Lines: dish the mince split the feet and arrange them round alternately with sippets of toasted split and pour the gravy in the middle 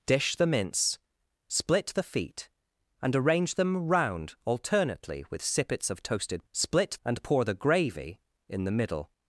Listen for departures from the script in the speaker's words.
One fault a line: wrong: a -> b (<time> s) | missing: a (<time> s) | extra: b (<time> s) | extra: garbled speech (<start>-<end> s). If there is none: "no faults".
no faults